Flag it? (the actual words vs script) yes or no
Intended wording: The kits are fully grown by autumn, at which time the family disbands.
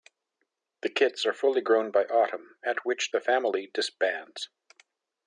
yes